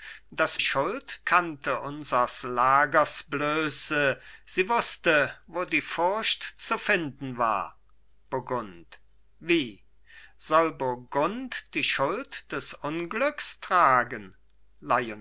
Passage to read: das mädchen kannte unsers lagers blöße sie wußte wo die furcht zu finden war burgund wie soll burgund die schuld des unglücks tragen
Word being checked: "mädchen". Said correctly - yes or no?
no